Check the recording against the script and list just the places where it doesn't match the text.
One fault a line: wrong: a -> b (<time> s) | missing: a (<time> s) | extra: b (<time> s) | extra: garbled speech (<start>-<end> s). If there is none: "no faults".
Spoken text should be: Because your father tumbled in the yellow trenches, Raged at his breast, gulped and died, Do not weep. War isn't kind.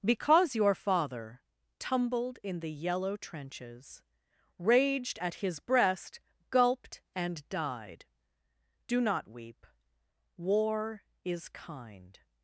wrong: isn't -> is (11.2 s)